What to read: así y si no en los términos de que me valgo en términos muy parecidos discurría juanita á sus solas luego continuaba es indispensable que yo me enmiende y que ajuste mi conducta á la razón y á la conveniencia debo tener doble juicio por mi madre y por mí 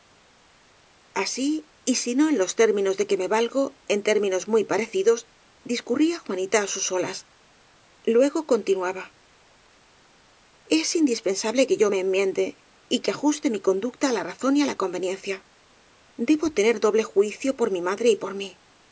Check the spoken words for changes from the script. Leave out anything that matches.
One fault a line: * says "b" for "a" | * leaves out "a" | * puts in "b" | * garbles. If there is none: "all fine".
all fine